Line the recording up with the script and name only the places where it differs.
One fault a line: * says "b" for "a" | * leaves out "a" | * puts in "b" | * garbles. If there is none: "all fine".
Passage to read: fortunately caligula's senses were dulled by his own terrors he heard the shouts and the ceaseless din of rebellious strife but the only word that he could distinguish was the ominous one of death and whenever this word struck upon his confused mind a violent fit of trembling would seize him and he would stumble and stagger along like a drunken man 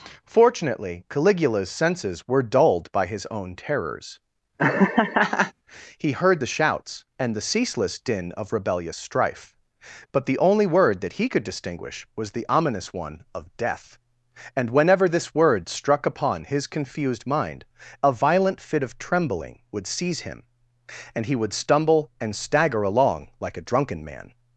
all fine